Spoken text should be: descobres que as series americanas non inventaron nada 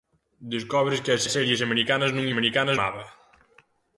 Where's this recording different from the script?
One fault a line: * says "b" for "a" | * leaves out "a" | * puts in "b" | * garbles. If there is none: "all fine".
* puts in "as"
* says "americanas" for "inventaron"